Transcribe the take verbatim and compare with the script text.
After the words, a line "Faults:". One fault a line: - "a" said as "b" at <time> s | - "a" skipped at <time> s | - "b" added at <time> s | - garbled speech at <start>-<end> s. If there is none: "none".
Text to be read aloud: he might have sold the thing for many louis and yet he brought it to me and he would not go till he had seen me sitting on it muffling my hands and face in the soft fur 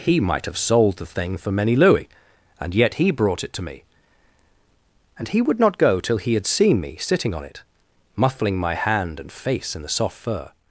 he might have sold the thing for many louis and yet he brought it to me and he would not go till he had seen me sitting on it muffling my hand and face in the soft fur
Faults:
- "hands" said as "hand" at 8.8 s